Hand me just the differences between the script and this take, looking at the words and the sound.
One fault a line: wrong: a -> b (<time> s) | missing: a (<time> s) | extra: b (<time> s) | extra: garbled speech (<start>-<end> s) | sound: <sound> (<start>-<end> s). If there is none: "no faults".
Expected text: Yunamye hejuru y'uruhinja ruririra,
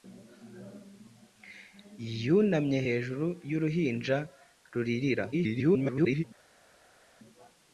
extra: garbled speech (5.3-6.2 s)